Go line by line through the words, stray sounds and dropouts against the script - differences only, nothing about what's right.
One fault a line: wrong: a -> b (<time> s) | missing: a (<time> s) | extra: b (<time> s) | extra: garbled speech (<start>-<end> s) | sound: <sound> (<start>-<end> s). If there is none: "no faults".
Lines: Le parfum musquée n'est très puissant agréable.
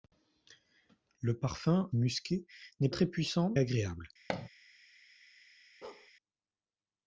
sound: thud (4.3-4.5 s)
sound: bark (5.8-6.1 s)